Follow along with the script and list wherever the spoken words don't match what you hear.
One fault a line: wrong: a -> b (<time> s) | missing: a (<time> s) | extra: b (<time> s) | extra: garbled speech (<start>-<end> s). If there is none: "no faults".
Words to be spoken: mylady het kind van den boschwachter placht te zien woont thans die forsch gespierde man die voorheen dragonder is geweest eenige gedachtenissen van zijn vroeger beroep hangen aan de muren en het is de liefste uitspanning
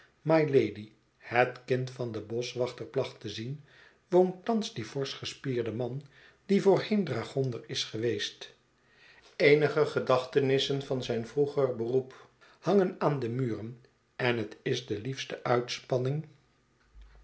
no faults